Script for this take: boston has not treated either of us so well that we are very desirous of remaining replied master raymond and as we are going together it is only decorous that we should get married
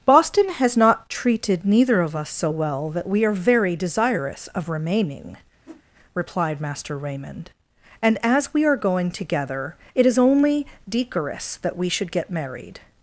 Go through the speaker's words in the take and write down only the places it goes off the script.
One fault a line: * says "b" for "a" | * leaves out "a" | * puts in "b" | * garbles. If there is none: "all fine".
* says "neither" for "either"